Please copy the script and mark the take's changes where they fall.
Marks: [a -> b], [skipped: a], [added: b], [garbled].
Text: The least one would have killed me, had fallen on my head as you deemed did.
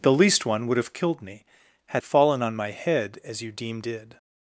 The least one would have killed me, had fallen on my head as you deemed did.